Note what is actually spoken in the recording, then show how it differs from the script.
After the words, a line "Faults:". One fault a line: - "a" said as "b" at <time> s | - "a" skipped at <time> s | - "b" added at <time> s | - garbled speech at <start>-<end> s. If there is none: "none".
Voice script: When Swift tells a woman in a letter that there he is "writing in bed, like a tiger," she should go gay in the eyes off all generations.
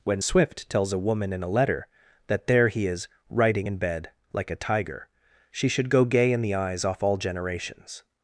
When Swift tells a woman in a letter that there he is "writing in bed, like a tiger," she should go gay in the eyes off all generations.
Faults:
none